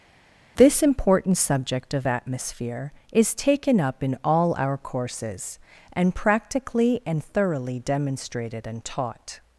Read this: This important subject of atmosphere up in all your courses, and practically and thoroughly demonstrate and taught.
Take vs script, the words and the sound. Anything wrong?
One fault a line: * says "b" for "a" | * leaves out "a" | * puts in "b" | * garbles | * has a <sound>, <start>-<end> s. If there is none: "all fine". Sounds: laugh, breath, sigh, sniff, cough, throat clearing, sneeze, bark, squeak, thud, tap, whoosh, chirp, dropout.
* puts in "is taken"
* says "our" for "your"
* says "demonstrated" for "demonstrate"